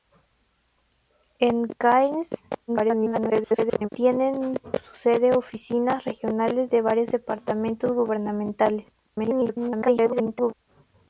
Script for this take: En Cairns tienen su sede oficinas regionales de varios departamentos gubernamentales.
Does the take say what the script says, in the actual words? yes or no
no